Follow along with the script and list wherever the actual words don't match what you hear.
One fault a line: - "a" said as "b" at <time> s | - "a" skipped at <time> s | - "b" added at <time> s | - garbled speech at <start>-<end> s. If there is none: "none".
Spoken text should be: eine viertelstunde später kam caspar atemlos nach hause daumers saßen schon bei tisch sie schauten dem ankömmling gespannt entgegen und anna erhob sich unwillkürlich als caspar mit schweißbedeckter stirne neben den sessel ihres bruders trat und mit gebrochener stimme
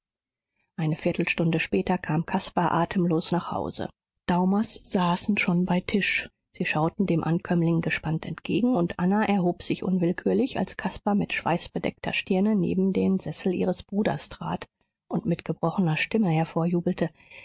none